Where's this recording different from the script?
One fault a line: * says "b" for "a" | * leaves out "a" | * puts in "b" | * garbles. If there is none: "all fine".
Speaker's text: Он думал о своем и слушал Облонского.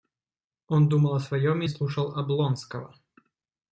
all fine